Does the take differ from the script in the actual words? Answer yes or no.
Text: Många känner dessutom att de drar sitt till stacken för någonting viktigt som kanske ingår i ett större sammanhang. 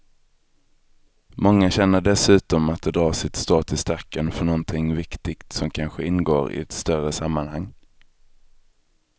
yes